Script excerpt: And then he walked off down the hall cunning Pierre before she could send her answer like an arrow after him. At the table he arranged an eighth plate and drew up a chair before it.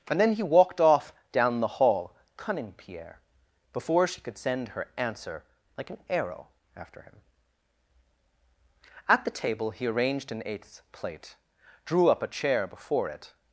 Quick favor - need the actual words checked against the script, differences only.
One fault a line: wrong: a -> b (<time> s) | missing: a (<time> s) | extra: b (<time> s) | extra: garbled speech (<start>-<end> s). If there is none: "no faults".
missing: and (11.3 s)